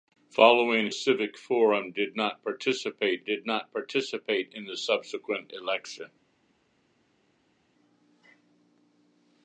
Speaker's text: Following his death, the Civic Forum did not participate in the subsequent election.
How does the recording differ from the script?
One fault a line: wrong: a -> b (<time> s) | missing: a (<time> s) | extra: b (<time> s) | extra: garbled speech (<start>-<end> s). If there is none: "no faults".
wrong: his death the Civic Forum -> Civic Forum did not participate (0.9 s)